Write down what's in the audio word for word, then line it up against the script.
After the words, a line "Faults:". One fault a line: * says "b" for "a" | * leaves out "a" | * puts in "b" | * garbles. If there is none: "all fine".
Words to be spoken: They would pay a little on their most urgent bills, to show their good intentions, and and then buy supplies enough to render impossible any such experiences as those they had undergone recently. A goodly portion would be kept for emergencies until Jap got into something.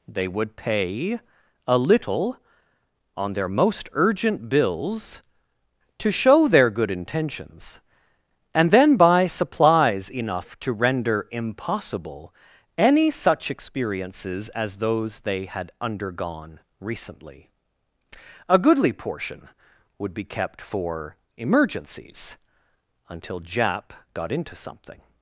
They would pay a little on their most urgent bills, to show their good intentions, and then buy supplies enough to render impossible any such experiences as those they had undergone recently. A goodly portion would be kept for emergencies until Jap got into something.
Faults:
* leaves out "and"